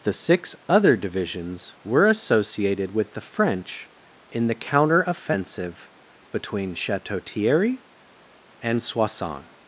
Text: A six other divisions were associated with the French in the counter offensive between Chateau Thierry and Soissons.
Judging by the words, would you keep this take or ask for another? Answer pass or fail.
fail